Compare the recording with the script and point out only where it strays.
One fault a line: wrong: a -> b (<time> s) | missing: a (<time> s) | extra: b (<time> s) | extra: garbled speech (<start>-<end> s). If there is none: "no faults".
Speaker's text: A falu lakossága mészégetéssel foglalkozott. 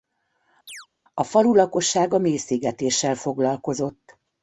no faults